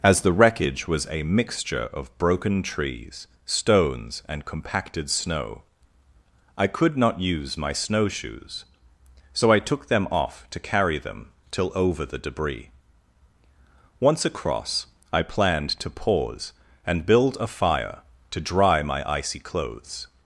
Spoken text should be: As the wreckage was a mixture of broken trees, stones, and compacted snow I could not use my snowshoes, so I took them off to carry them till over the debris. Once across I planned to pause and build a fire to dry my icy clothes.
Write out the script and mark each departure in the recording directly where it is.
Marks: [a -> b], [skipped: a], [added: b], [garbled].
As the wreckage was a mixture of broken trees, stones, and compacted snow I could not use my snowshoes, so I took them off to carry them till over the debris. Once across I planned to pause and build a fire to dry my icy clothes.